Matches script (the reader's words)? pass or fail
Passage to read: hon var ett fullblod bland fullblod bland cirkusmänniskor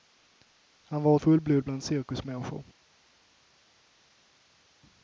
fail